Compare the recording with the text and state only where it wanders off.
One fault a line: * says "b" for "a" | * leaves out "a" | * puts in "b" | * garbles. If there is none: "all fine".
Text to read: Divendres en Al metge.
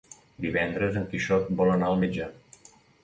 * puts in "Quixot vol anar"